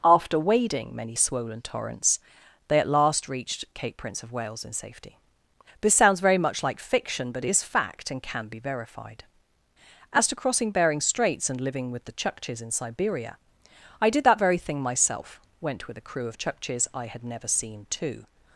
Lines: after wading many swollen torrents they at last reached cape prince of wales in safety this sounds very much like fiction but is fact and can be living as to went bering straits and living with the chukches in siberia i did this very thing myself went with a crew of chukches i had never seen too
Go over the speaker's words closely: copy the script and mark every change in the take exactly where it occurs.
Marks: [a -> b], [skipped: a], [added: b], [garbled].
after wading many swollen torrents they at last reached cape prince of wales in safety this sounds very much like fiction but is fact and can be [living -> verified] as to [went -> crossing] bering straits and living with the chukches in siberia i did [this -> that] very thing myself went with a crew of chukches i had never seen too